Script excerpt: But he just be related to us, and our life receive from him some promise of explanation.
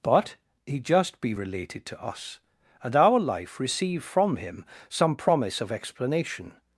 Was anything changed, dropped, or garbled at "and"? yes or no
no